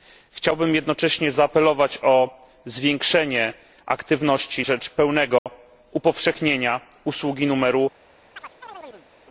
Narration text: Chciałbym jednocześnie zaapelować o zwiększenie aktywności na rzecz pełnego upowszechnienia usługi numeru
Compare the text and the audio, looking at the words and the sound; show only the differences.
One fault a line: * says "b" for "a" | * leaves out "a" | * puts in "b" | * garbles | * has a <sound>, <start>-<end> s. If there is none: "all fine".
* leaves out "na"
* has a dropout, 5.4-5.5 s
* has a chirp, 8.4-9.1 s